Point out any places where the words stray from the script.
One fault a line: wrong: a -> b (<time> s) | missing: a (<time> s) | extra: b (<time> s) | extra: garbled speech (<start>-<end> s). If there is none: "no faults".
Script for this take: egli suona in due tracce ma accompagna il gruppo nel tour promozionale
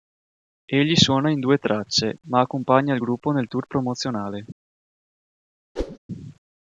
no faults